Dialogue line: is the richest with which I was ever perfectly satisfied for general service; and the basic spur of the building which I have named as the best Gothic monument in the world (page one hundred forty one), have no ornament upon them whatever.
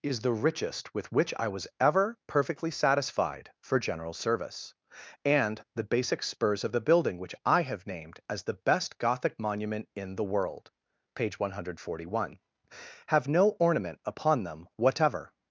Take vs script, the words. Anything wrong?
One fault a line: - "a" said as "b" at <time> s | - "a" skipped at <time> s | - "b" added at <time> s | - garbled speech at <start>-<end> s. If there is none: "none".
- "spur" said as "spurs" at 6.2 s